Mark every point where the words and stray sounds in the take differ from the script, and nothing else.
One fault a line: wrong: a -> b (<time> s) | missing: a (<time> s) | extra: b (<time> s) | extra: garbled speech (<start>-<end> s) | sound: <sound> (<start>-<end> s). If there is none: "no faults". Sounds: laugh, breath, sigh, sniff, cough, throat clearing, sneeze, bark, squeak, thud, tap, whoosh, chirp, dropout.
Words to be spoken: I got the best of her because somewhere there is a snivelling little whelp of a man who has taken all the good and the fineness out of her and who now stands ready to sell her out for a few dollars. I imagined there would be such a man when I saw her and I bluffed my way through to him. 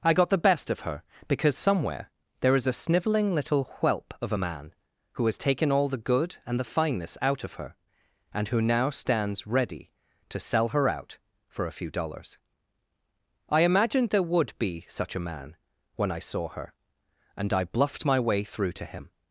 no faults